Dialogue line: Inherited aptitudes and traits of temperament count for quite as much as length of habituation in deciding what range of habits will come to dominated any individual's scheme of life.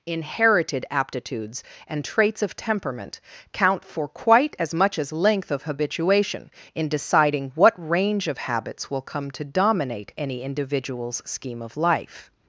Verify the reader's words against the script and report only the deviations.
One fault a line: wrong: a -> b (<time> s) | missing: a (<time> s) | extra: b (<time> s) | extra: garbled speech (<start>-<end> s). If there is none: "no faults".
wrong: dominated -> dominate (9.4 s)